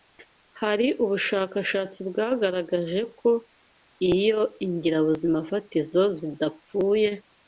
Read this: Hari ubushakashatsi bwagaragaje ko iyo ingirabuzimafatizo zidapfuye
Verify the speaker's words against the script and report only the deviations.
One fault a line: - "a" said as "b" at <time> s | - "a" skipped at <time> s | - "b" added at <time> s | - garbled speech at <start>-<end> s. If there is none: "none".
none